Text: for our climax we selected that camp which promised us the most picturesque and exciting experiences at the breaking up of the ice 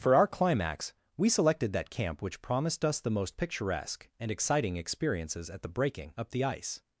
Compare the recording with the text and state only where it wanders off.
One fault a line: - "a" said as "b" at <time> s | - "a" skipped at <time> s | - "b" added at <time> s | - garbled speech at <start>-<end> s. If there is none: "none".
- "of" skipped at 6.3 s